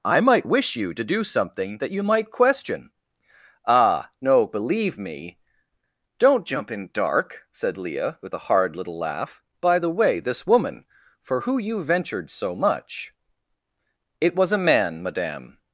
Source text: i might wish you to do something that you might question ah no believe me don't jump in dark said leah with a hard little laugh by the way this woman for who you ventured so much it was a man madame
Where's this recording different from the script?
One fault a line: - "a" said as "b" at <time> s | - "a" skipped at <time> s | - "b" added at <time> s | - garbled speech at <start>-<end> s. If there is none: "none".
none